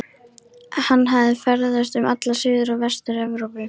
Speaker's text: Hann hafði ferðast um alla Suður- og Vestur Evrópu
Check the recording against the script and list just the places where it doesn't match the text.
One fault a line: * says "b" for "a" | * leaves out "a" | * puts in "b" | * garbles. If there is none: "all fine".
all fine